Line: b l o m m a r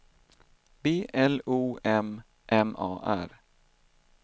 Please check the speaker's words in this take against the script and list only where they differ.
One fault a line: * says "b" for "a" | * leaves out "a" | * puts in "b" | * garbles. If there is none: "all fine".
all fine